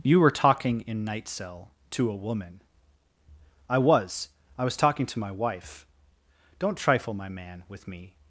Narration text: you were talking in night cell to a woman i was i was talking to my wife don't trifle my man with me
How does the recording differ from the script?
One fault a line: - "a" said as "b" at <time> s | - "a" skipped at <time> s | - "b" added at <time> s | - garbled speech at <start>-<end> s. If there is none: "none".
none